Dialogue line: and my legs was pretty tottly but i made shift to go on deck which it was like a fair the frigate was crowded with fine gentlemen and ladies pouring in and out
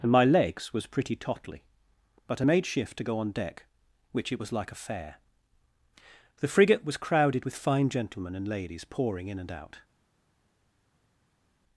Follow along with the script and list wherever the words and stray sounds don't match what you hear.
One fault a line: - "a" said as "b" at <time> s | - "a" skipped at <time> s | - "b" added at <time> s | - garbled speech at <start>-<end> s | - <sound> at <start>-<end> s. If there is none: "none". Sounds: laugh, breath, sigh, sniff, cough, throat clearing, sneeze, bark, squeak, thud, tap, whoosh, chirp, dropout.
none